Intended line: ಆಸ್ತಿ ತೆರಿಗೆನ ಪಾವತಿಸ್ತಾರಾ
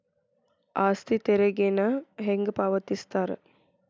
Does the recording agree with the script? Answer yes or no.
no